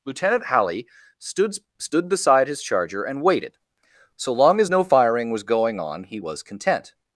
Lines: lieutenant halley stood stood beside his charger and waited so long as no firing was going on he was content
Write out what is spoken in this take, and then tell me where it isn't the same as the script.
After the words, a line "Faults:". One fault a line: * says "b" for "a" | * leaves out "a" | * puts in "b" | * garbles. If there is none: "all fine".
lieutenant halley stood stood beside his charger and waited so long as no firing was going on he was content
Faults:
all fine